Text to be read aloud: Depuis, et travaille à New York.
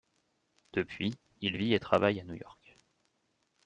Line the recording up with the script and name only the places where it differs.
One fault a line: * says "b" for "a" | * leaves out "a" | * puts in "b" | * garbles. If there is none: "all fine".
* puts in "il vit"